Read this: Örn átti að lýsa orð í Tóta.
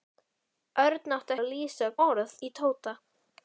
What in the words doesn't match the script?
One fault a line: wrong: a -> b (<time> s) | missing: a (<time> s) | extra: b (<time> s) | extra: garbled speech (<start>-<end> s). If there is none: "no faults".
no faults